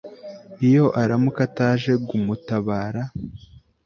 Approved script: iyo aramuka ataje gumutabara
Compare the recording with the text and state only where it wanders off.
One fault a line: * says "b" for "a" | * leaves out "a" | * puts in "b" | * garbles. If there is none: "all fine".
all fine